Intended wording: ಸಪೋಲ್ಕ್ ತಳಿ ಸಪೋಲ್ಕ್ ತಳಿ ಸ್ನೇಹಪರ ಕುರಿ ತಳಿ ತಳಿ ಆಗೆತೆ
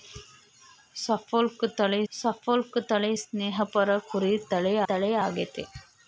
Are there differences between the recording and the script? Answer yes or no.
no